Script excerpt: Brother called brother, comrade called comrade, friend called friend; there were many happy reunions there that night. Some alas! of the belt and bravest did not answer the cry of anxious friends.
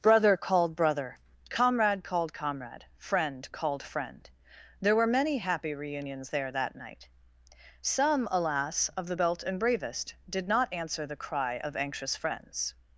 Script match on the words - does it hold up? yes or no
yes